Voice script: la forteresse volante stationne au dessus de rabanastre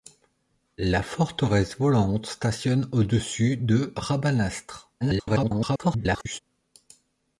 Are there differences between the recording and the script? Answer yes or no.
yes